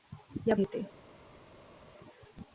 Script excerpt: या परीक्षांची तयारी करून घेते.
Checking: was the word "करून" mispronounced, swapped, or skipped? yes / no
yes